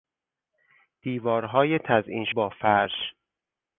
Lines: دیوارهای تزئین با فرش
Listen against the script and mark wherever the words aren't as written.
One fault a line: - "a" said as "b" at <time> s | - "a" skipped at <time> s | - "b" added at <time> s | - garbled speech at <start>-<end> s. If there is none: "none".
none